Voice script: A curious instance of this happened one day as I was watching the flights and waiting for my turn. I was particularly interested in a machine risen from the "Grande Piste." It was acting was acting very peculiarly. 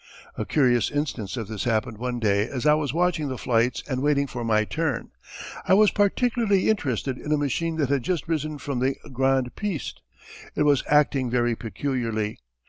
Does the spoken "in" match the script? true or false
true